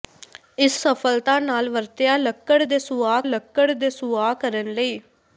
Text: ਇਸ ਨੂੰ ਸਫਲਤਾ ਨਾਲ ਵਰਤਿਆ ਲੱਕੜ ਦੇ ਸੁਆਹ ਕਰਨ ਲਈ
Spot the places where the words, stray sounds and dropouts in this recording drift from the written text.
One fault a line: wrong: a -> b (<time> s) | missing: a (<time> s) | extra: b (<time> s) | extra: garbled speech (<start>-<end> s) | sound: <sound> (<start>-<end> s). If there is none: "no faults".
missing: ਨੂੰ (0.8 s)
extra: ਲੱਕੜ ਦੇ ਸੁਆਹ (3.2 s)